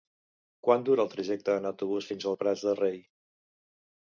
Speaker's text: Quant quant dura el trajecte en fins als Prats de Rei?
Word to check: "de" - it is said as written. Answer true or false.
true